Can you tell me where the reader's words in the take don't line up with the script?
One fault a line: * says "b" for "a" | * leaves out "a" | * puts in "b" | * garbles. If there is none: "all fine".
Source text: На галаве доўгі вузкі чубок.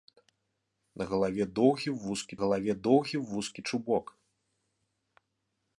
* puts in "галаве доўгі вузкі"